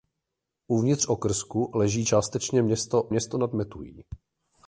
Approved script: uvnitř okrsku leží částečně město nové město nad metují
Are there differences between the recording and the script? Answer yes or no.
yes